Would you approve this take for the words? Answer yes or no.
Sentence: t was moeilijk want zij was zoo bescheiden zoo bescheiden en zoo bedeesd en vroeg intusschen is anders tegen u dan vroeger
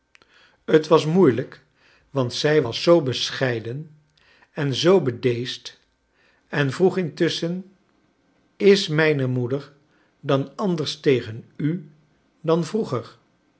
no